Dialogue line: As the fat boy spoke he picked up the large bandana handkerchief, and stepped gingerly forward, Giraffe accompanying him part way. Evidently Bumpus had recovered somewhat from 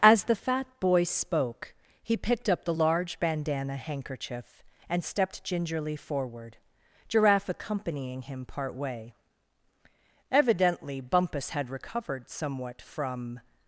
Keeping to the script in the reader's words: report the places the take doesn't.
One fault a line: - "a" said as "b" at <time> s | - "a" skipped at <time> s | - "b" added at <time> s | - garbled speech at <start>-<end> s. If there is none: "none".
none